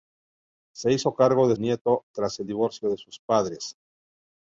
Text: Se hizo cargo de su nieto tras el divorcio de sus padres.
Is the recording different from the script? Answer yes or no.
yes